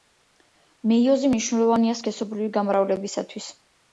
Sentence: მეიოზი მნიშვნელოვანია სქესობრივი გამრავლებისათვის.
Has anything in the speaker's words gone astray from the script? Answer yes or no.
no